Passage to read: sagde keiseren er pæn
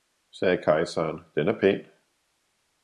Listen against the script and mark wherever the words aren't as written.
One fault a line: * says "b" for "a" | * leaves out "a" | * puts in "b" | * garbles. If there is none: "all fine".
* puts in "den"